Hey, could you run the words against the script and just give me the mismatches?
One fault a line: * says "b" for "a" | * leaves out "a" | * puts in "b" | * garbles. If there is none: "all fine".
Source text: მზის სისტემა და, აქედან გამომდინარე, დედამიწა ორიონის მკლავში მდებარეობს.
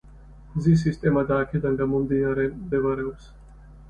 * leaves out "დედამიწა ორიონის მკლავში"